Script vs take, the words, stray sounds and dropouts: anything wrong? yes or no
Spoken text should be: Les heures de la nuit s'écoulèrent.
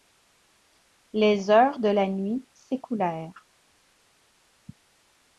no